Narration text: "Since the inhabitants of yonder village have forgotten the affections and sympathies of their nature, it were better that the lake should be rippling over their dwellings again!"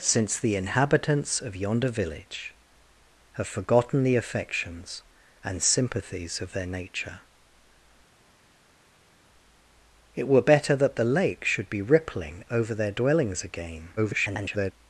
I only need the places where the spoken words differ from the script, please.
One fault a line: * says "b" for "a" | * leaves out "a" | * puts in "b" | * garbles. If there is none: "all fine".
* garbles